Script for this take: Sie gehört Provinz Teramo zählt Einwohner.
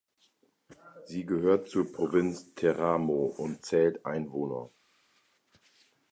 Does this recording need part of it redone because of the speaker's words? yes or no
yes